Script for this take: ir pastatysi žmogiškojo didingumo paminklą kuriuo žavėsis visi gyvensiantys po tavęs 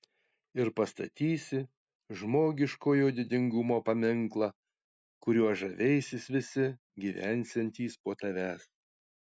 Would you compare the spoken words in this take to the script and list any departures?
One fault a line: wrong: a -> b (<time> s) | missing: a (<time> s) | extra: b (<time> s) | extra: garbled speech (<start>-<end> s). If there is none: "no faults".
no faults